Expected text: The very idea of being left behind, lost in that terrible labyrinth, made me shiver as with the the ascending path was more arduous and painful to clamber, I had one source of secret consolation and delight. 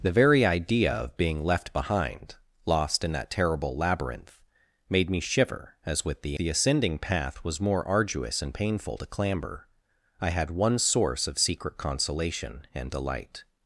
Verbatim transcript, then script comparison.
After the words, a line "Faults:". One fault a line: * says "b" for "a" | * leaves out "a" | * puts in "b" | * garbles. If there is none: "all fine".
The very idea of being left behind, lost in that terrible labyrinth, made me shiver as with the the ascending path was more arduous and painful to clamber, I had one source of secret consolation and delight.
Faults:
all fine